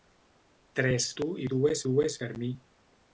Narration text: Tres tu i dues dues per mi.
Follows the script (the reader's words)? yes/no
yes